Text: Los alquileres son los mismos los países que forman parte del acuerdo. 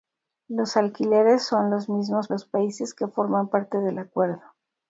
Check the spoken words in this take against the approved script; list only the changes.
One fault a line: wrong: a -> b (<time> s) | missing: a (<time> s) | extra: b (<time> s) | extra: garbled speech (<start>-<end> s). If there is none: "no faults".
no faults